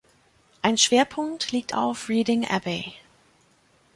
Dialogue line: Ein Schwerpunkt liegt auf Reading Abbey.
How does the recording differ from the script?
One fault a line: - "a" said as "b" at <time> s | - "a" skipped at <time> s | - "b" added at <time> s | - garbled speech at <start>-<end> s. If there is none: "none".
none